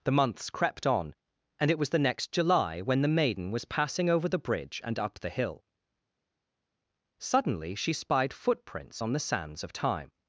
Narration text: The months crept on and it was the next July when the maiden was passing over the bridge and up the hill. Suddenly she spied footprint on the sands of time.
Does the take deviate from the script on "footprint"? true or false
true